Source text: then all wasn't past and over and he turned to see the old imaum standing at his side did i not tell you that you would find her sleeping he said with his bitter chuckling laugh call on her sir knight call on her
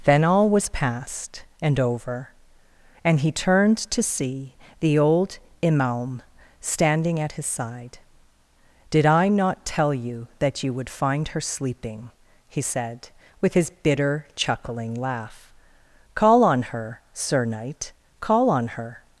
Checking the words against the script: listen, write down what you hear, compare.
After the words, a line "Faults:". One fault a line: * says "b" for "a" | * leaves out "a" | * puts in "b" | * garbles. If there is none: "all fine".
then all was past and over and he turned to see the old imaum standing at his side did i not tell you that you would find her sleeping he said with his bitter chuckling laugh call on her sir knight call on her
Faults:
* says "was" for "wasn't"